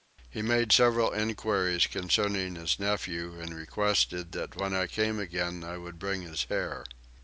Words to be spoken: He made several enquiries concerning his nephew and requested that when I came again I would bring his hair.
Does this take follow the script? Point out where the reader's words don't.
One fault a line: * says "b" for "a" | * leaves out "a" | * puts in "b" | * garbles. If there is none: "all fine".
all fine